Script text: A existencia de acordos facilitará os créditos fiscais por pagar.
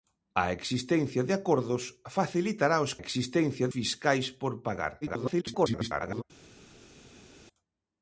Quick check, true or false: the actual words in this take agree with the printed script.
false